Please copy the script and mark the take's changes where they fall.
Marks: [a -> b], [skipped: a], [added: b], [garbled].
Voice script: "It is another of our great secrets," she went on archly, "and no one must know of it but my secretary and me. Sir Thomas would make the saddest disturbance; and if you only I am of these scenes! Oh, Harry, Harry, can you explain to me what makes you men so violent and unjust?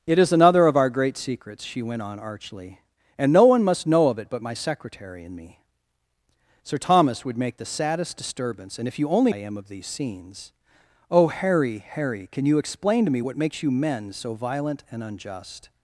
"It is another of our great secrets," she went on archly, "and no one must know of it but my secretary and me. Sir Thomas would make the saddest disturbance; and if you only I am of these scenes! Oh, Harry, Harry, can you explain to me what makes you men so violent and unjust?